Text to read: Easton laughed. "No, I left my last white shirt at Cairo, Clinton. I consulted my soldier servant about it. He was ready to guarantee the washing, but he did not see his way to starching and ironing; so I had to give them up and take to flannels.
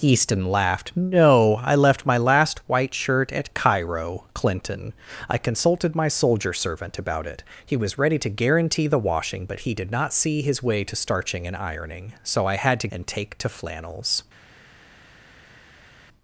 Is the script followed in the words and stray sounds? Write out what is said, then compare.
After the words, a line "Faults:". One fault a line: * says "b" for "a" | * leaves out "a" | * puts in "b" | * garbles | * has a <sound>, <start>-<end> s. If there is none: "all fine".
Easton laughed. "No, I left my last white shirt at Cairo, Clinton. I consulted my soldier servant about it. He was ready to guarantee the washing, but he did not see his way to starching and ironing; so I had to and take to flannels.
Faults:
* leaves out "give them up"